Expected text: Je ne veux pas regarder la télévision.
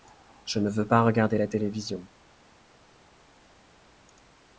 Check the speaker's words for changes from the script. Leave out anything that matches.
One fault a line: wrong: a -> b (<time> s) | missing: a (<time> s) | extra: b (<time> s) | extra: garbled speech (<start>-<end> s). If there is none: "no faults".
no faults